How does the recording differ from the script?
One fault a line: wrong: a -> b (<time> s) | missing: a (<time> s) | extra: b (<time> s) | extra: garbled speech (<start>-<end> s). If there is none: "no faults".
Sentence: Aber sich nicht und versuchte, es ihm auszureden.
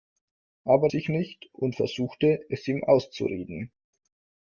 no faults